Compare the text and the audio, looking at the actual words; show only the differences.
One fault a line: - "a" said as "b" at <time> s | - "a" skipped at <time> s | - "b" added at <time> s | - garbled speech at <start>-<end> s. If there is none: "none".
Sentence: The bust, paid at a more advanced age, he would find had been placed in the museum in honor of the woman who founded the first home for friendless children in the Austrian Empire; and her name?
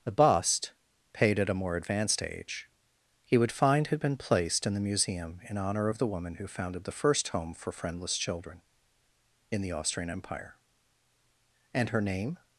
none